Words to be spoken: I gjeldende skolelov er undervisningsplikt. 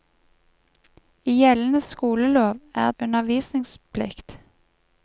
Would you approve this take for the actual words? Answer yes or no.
yes